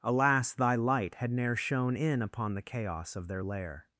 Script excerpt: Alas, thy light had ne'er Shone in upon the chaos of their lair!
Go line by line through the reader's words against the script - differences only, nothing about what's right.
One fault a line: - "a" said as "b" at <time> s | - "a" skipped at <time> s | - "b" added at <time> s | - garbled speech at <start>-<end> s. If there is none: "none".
none